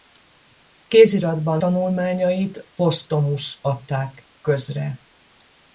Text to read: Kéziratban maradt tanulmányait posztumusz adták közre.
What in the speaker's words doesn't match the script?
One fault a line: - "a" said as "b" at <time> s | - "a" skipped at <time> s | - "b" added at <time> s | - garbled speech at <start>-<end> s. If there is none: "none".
- "maradt" skipped at 1.6 s